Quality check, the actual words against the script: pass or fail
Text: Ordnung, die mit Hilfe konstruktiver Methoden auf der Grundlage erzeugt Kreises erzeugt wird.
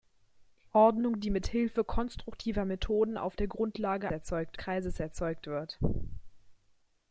pass